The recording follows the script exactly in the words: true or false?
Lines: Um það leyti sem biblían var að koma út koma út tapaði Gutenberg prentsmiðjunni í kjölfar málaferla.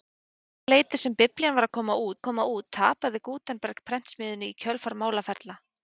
true